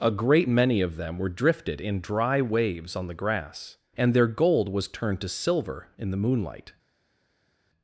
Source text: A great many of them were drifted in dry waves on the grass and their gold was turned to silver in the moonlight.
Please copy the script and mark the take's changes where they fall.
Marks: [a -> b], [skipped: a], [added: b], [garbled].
A great many of them were drifted in dry waves on the grass and their gold was turned to silver in the moonlight.